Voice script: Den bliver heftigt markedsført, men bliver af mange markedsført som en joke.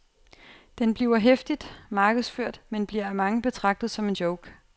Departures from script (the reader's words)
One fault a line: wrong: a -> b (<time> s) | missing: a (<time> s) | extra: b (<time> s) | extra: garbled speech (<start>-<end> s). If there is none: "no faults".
wrong: markedsført -> betragtet (3.4 s)